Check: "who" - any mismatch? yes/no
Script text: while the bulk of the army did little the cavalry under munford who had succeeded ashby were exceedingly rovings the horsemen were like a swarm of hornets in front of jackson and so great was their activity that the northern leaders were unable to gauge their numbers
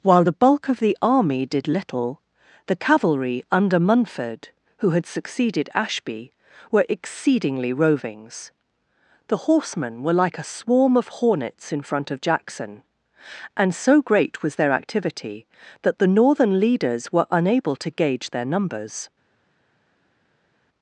no